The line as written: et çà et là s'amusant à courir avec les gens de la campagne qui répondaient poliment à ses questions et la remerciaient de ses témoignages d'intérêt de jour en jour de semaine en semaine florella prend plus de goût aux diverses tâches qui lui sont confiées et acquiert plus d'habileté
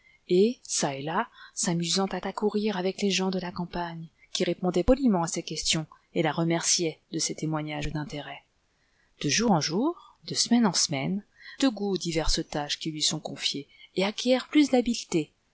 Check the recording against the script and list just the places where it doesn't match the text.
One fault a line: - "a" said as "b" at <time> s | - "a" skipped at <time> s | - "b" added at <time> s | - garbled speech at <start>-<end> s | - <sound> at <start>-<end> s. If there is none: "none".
- "à" added at 2.2 s
- "florella prend plus" skipped at 11.2 s